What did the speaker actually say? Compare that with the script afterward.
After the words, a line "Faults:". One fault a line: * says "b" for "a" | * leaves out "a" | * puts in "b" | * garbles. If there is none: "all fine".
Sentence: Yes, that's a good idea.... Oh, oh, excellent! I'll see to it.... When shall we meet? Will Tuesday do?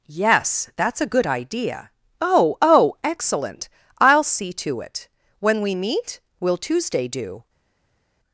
Yes, that's a good idea.... Oh, oh, excellent! I'll see to it.... When we meet? Will Tuesday do?
Faults:
* leaves out "shall"